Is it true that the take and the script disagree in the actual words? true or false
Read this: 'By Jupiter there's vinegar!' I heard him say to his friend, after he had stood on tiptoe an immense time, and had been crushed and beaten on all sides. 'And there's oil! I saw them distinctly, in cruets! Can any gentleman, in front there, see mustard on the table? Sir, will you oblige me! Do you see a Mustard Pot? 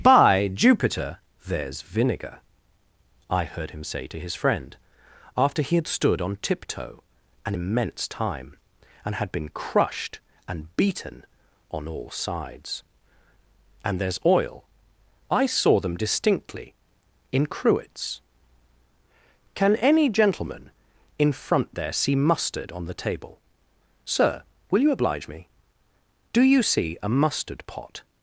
false